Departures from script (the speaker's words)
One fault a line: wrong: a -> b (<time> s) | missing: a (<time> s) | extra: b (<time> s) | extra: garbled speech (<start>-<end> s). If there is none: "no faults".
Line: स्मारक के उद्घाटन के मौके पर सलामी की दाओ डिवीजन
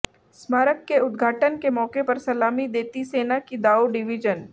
extra: देती सेना (2.7 s)